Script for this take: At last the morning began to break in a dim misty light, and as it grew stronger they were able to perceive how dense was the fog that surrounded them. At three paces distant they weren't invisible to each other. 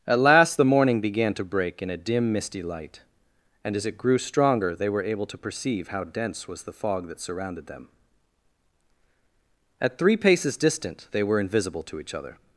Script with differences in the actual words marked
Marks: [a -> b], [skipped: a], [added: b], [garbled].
At last the morning began to break in a dim misty light, and as it grew stronger they were able to perceive how dense was the fog that surrounded them. At three paces distant they [weren't -> were] invisible to each other.